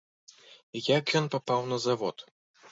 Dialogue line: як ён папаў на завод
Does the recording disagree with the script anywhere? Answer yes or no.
no